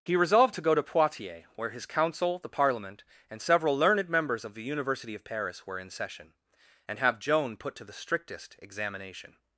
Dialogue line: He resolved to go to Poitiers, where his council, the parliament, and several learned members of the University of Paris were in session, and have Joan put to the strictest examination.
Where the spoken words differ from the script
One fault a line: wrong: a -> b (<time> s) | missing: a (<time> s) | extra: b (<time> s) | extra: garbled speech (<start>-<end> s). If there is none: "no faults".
no faults